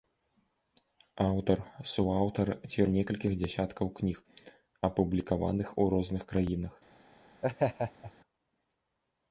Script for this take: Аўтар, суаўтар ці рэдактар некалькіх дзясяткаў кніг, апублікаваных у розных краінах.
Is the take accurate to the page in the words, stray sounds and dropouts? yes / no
no